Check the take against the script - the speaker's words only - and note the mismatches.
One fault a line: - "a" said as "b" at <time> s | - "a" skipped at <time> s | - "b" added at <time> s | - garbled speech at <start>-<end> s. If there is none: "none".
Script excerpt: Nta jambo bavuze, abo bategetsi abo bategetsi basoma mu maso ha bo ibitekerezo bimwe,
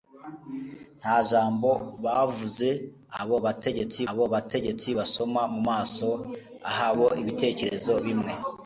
none